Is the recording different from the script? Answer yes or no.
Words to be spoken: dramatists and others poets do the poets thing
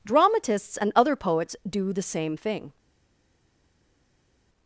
yes